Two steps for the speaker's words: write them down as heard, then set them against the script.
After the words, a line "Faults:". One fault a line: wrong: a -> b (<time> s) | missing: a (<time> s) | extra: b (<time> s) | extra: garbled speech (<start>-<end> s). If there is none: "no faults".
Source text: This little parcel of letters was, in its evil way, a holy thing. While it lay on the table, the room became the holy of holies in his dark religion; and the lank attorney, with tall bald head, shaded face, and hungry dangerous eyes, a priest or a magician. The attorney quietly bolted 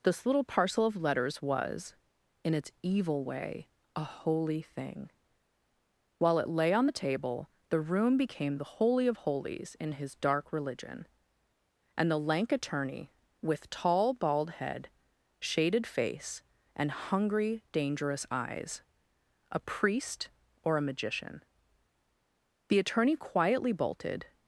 This little parcel of letters was, in its evil way, a holy thing. While it lay on the table, the room became the holy of holies in his dark religion; and the lank attorney, with tall bald head, shaded face, and hungry dangerous eyes, a priest or a magician. The attorney quietly bolted
Faults:
no faults